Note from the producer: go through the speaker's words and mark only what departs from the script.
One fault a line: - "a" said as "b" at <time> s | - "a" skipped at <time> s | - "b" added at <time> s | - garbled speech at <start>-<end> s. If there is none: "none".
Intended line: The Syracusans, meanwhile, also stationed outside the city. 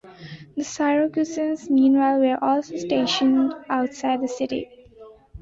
- "were" added at 2.2 s